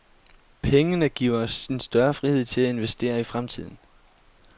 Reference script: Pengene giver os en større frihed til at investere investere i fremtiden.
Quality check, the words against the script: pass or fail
fail